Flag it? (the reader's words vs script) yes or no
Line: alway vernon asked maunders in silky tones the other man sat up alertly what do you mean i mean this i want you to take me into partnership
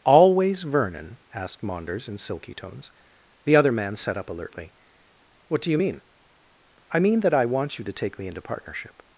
yes